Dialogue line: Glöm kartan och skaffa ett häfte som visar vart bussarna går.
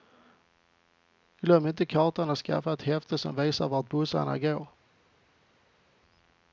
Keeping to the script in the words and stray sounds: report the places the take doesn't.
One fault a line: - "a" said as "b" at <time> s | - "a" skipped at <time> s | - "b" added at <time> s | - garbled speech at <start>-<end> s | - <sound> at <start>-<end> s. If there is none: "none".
- "inte" added at 1.7 s